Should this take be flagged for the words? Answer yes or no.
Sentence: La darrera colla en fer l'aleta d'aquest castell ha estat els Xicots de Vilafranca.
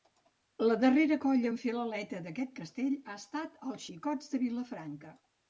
no